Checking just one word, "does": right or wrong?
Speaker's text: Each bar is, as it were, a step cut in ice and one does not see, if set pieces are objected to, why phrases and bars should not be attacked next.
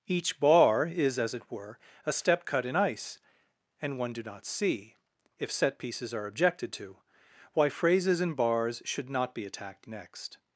wrong